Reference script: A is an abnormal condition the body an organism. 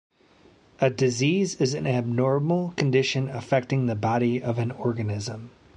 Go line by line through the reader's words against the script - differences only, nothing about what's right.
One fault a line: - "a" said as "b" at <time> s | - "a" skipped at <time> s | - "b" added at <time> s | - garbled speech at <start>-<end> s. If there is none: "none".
- "disease" added at 0.9 s
- "affecting" added at 3.3 s
- "of" added at 4.4 s